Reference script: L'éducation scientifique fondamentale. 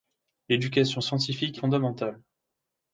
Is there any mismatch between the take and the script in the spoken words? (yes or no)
no